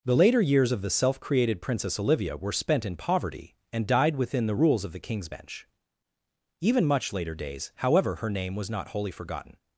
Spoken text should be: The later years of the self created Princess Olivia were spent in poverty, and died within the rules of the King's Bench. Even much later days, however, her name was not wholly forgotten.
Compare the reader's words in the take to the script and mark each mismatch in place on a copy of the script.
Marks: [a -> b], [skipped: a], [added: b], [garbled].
The later years of the self created Princess Olivia were spent in poverty, and died within the rules of the King's Bench. Even much later days, however, her name was not wholly forgotten.